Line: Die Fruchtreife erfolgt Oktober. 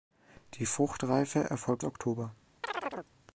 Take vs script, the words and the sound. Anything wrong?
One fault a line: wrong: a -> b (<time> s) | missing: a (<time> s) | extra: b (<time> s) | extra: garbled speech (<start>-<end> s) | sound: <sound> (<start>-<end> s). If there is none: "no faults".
sound: chirp (2.6-3.1 s)